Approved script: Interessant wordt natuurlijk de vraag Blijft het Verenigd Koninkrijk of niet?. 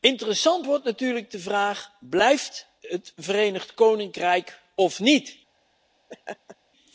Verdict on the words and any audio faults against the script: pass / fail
fail